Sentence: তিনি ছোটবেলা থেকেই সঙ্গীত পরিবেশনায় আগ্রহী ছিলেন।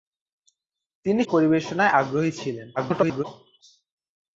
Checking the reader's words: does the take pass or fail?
fail